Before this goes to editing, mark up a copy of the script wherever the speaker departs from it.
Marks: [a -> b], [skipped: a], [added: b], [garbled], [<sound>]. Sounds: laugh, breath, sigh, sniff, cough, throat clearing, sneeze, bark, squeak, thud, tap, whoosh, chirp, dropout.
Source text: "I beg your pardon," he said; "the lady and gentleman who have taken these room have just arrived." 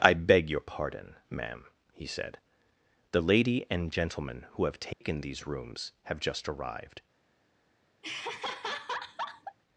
"I beg your pardon," [added: ma'am] he said; "the lady and gentleman who have taken [dropout] these [room -> rooms] have just arrived." [laugh]